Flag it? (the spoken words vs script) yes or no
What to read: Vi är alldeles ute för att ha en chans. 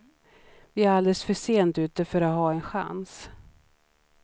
yes